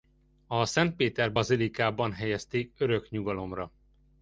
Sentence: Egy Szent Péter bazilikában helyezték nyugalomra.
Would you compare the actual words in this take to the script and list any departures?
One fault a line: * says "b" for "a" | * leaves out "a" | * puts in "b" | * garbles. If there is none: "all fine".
* says "A" for "Egy"
* puts in "örök"